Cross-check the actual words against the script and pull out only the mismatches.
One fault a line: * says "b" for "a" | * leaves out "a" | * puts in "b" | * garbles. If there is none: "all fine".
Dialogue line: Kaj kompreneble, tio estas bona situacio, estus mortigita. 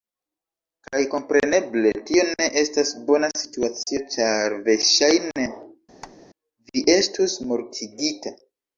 * puts in "ne"
* puts in "ĉar verŝajne vi"